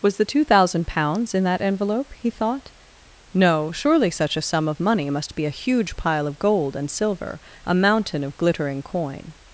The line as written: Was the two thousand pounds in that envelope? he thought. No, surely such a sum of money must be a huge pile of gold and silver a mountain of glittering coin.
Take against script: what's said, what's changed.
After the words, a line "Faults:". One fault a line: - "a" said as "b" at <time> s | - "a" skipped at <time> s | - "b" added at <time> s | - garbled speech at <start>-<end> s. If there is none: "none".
Was the two thousand pounds in that envelope? he thought. No, surely such a sum of money must be a huge pile of gold and silver a mountain of glittering coin.
Faults:
none